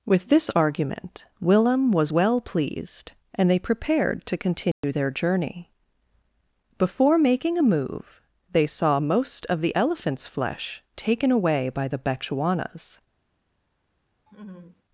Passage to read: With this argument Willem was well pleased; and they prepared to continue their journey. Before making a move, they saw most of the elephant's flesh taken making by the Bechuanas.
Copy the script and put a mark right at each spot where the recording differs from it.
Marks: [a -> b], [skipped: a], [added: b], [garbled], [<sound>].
With this argument Willem was well pleased; and they prepared to continue [dropout] their journey. Before making a move, they saw most of the elephant's flesh taken [making -> away] by the Bechuanas. [laugh]